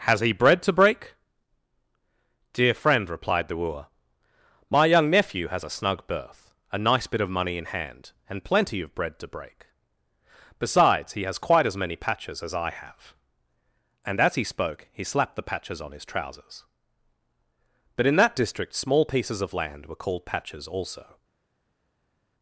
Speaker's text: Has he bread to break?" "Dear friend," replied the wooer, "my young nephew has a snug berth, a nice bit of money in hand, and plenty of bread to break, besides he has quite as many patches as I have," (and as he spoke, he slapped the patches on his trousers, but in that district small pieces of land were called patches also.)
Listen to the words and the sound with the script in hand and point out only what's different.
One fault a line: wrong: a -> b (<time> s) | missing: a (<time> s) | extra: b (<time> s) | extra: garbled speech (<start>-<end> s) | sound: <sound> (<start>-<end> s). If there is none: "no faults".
no faults